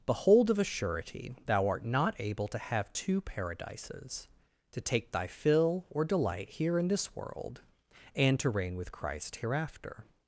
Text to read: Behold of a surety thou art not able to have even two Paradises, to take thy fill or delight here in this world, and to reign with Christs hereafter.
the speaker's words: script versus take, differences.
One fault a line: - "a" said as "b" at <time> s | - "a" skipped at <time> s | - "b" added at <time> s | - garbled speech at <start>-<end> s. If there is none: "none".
- "even" skipped at 2.9 s
- "Christs" said as "Christ" at 8.9 s